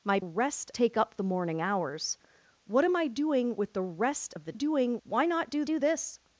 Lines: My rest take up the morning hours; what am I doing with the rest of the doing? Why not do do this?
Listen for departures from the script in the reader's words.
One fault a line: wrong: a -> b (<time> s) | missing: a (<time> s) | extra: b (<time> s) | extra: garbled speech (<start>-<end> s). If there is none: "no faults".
no faults